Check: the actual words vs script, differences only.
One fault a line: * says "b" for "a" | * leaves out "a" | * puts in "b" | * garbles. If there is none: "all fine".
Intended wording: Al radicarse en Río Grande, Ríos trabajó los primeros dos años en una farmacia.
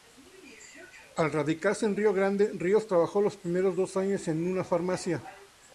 all fine